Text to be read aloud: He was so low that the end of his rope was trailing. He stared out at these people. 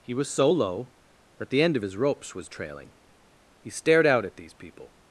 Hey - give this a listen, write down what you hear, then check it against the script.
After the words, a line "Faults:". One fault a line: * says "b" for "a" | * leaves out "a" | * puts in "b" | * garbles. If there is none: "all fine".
He was so low that the end of his ropes was trailing. He stared out at these people.
Faults:
* says "ropes" for "rope"